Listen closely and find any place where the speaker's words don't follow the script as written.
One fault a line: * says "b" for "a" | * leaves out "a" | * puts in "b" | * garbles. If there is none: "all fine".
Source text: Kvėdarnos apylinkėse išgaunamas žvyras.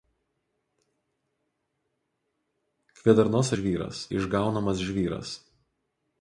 * says "žvyras" for "apylinkėse"